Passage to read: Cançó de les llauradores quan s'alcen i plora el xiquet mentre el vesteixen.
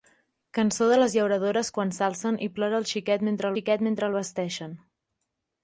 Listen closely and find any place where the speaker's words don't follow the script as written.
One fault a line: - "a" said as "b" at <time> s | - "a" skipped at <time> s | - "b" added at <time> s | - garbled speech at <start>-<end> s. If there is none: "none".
- "xiquet mentre" added at 3.6 s